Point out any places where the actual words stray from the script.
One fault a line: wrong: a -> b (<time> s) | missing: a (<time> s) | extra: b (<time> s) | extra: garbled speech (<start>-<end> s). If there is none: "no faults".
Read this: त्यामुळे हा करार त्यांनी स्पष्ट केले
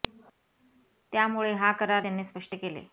no faults